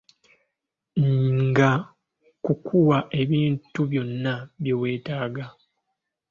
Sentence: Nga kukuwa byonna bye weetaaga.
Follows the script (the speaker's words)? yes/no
no